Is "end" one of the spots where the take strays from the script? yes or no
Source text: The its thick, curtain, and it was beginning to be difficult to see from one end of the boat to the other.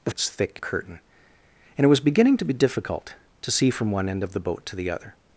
no